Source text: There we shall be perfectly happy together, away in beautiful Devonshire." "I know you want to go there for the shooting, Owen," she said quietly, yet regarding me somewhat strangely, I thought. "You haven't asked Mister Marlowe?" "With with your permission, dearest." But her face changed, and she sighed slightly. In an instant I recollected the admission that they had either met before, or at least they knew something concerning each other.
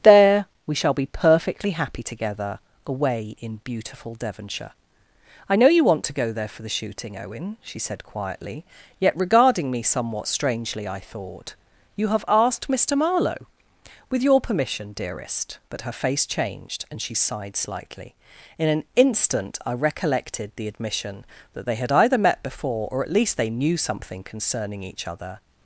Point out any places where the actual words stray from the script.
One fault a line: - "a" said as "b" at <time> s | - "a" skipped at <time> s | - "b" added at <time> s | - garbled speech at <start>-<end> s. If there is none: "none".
- "haven't" said as "have" at 12.1 s
- "with" skipped at 14.2 s